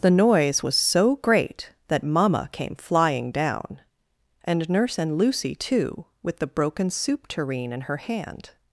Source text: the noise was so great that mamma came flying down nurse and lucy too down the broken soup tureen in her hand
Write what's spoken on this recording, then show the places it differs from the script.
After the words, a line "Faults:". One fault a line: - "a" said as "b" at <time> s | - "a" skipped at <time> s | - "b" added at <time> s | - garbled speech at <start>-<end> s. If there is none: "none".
the noise was so great that mamma came flying down and nurse and lucy too with the broken soup tureen in her hand
Faults:
- "and" added at 4.4 s
- "down" said as "with" at 6.2 s